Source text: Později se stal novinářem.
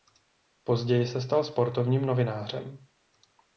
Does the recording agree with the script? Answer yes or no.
no